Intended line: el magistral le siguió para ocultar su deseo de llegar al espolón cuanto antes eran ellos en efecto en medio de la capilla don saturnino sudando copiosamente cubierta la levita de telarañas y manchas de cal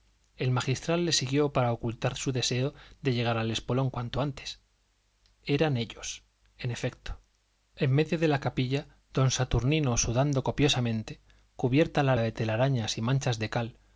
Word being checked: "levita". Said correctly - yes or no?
no